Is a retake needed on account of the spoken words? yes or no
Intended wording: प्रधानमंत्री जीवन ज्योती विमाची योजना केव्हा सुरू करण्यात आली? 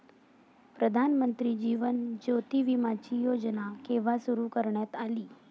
no